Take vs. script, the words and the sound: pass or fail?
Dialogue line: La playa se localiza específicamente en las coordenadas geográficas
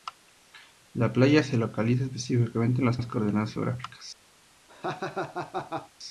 fail